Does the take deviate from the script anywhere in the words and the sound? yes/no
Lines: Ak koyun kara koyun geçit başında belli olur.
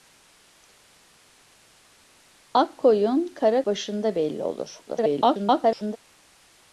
yes